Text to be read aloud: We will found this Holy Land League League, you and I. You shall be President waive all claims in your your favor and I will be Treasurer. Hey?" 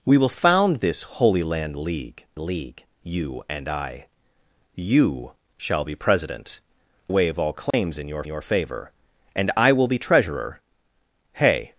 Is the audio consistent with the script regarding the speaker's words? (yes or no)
yes